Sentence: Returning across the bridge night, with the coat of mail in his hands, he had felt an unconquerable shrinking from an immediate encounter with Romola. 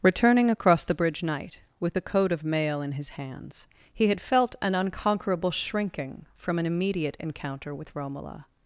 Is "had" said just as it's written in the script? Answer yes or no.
yes